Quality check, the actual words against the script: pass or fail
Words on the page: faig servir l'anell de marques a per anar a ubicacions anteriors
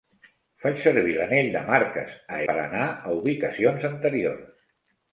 pass